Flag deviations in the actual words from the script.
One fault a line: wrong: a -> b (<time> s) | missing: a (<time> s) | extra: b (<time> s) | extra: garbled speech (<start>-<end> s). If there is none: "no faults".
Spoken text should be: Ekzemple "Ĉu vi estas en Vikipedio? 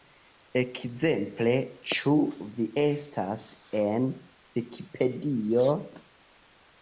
no faults